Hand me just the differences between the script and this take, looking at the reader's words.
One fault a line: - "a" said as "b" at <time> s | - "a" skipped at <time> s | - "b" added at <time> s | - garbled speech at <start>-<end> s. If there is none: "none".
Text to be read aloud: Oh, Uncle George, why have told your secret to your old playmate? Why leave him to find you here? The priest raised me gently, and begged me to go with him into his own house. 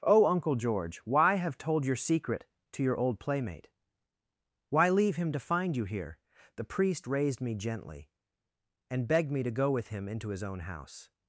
none